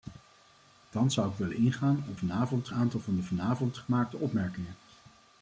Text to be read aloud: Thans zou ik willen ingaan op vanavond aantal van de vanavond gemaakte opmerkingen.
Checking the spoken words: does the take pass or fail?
pass